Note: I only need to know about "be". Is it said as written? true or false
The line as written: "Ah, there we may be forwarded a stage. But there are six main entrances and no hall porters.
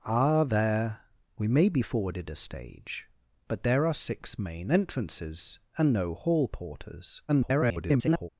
true